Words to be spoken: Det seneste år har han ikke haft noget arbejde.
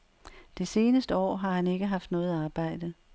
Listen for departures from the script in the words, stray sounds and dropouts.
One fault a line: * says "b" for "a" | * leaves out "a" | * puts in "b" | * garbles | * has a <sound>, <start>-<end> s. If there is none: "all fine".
all fine